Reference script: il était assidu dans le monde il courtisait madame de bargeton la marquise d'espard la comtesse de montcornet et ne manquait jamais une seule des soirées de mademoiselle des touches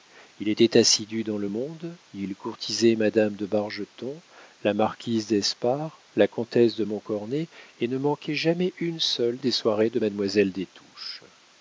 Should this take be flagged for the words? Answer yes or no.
no